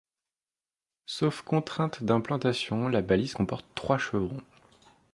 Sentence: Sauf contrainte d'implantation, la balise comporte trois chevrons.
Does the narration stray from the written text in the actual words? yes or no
no